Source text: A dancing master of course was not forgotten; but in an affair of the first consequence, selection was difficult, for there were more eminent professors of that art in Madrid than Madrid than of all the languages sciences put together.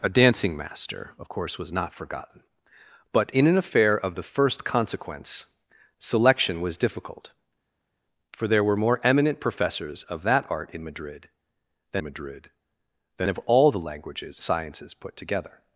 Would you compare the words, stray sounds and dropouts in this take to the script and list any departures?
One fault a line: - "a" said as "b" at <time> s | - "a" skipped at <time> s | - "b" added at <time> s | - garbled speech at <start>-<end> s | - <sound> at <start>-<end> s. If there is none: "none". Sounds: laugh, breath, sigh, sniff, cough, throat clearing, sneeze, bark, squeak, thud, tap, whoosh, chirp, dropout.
none